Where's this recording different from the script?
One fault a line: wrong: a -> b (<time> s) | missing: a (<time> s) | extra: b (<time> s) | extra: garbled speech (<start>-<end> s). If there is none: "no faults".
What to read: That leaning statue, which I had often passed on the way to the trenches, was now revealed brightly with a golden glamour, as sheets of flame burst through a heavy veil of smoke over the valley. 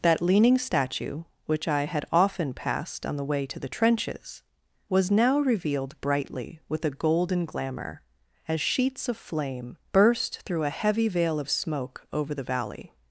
no faults